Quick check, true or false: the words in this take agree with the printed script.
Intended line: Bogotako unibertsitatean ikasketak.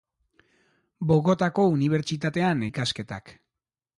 true